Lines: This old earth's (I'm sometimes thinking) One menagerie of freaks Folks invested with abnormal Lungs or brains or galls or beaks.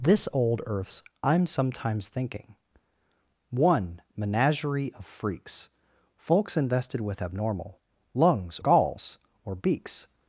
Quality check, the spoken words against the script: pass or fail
fail